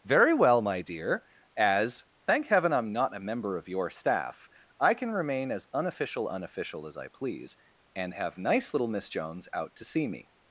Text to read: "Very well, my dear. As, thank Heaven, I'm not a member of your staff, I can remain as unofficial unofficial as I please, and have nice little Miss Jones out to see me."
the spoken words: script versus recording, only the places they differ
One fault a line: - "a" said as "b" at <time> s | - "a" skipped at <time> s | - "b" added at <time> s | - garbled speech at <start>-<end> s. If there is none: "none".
none